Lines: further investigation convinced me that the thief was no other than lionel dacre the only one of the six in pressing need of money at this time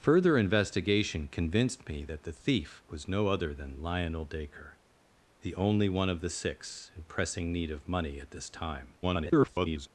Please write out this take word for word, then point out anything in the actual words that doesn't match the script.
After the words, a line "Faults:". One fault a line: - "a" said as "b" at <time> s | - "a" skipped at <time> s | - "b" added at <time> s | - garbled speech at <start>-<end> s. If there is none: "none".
further investigation convinced me that the thief was no other than lionel dacre the only one of the six in pressing need of money at this time [garbled]
Faults:
- garbled speech at 9.0-9.9 s